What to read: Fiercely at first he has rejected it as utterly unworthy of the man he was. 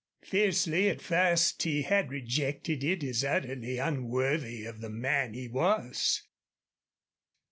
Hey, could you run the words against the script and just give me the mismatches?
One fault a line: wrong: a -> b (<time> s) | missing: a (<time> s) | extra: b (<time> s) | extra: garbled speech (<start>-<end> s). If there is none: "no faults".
wrong: has -> had (1.8 s)